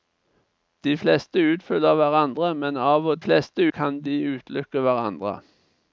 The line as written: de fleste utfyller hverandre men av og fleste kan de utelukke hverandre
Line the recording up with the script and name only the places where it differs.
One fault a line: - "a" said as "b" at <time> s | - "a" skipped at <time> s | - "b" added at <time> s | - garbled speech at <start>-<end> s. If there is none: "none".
none